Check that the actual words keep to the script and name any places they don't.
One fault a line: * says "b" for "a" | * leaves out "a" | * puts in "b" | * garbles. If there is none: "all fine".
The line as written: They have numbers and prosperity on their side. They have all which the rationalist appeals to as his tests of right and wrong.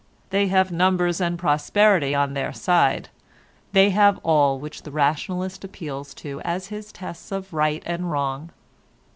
all fine